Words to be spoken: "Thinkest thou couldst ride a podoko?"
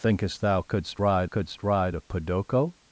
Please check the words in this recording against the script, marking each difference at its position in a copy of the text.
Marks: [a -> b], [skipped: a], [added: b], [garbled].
"Thinkest thou couldst ride [added: couldst ride] a podoko?"